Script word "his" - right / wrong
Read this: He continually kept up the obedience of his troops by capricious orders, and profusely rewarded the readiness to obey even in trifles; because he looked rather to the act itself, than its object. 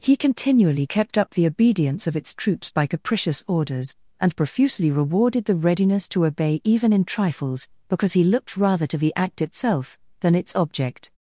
wrong